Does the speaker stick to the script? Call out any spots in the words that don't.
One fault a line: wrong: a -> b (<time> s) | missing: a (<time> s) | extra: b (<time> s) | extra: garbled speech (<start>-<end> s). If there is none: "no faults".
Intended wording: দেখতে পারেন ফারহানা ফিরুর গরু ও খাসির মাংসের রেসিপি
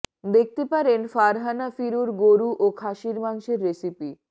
no faults